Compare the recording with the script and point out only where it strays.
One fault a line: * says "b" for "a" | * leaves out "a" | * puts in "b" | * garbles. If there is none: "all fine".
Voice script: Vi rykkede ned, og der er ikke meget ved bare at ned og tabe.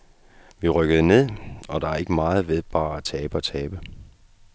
* says "tabe" for "ned"